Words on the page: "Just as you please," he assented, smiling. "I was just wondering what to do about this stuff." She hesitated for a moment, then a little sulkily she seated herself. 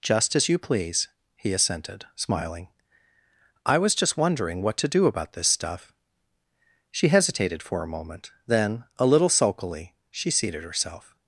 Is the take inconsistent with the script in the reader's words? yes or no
no